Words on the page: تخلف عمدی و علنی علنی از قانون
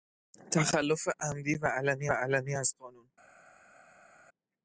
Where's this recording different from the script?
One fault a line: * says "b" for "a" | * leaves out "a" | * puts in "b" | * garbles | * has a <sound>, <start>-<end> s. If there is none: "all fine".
all fine